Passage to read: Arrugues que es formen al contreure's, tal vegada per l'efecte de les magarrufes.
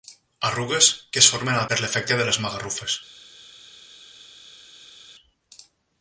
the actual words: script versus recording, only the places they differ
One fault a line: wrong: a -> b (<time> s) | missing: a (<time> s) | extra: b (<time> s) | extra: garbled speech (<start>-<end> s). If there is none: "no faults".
missing: contreure's tal vegada (1.7 s)